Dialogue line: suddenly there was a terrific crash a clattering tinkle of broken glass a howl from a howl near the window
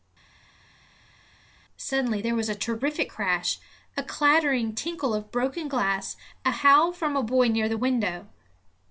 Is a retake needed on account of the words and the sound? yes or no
yes